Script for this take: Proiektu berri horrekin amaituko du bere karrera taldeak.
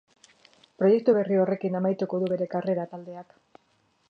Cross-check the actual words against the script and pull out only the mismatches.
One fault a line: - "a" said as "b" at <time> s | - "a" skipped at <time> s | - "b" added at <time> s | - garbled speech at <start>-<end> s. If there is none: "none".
none